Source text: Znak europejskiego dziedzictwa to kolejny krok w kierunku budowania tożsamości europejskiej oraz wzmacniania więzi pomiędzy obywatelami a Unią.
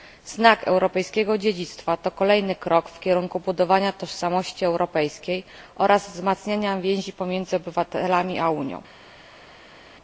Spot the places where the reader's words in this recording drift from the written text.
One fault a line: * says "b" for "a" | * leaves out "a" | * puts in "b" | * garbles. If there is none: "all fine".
all fine